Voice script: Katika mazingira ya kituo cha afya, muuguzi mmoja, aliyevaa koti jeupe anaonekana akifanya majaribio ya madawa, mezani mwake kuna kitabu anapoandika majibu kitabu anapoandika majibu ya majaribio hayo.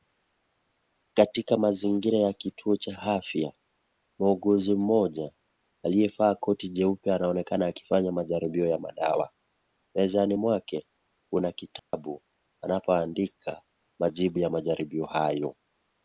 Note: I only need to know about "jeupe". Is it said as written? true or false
true